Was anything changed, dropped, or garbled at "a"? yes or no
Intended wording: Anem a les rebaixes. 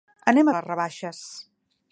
no